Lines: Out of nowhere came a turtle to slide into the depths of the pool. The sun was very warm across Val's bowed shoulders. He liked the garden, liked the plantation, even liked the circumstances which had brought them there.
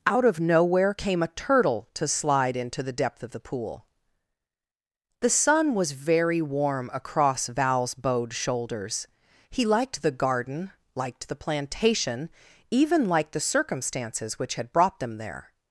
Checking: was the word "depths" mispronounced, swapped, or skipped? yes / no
yes